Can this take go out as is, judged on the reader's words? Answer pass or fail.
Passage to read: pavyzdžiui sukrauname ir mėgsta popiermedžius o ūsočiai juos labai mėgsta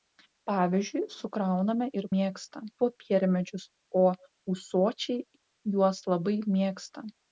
pass